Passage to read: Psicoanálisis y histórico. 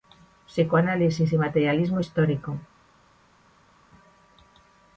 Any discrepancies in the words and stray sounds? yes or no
yes